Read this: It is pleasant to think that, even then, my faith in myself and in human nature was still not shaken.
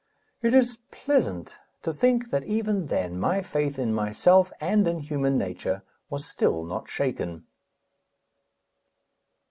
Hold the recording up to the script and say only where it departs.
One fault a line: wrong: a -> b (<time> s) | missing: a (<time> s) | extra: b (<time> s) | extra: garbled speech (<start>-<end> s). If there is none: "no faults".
no faults